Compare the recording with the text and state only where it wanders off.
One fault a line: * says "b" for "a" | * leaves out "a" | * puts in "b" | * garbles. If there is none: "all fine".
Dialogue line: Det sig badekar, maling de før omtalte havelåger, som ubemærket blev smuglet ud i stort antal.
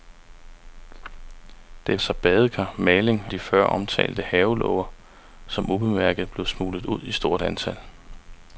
all fine